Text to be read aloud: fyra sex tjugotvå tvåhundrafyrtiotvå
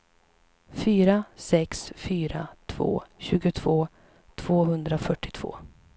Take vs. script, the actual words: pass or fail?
fail